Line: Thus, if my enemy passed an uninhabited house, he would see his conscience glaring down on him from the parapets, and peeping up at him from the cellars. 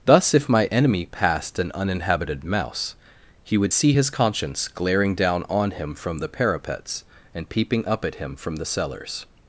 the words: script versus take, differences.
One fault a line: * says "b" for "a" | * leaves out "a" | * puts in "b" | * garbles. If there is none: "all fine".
* says "mouse" for "house"